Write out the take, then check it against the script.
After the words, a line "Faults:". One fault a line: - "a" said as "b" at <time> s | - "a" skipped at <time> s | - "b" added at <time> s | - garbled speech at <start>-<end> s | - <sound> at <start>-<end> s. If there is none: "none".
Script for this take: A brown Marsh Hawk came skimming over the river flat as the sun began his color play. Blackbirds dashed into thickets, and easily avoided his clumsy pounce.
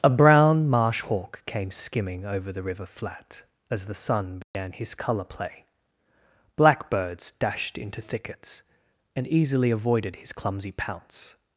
A brown Marsh Hawk came skimming over the river flat as the sun began his color play. Blackbirds dashed into thickets, and easily avoided his clumsy pounce.
Faults:
- dropout at 4.4-4.5 s